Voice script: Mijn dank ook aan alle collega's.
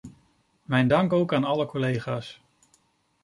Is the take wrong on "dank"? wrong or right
right